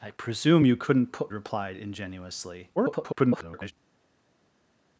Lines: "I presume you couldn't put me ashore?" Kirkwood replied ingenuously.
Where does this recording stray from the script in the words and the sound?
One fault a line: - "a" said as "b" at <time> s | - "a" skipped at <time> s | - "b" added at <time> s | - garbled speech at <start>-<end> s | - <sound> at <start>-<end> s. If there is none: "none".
- "me ashore Kirkwood" skipped at 1.3 s
- garbled speech at 2.8-3.7 s